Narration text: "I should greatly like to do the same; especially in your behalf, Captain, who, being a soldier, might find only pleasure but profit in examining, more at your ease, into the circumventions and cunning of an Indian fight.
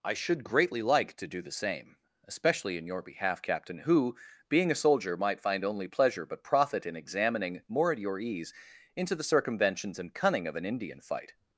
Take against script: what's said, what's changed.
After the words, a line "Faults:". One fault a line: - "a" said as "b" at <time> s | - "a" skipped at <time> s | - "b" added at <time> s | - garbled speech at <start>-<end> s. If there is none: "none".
"I should greatly like to do the same; especially in your behalf, Captain, who, being a soldier, might find only pleasure but profit in examining, more at your ease, into the circumventions and cunning of an Indian fight.
Faults:
none